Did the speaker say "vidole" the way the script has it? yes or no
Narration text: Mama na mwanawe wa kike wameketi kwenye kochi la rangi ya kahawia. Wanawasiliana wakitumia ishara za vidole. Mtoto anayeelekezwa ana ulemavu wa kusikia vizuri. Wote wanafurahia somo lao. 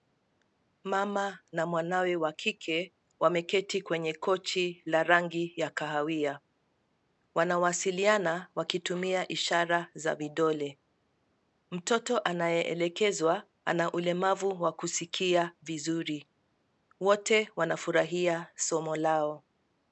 yes